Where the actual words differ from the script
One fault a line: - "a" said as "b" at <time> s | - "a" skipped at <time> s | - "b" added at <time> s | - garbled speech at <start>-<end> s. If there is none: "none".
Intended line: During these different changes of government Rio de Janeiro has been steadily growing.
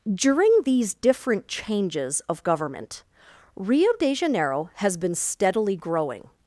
none